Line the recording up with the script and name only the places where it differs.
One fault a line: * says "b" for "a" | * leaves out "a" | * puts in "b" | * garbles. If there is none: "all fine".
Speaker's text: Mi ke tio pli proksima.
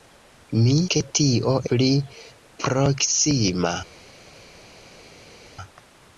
all fine